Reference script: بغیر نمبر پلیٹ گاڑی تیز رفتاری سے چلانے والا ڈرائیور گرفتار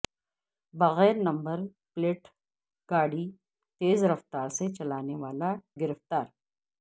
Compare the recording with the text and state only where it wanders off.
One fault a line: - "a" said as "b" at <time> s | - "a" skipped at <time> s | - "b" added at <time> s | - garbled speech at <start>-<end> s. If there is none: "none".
- "ڈرائیور" skipped at 5.5 s